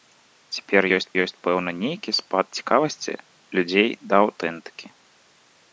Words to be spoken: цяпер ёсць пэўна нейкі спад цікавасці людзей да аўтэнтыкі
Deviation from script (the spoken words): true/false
true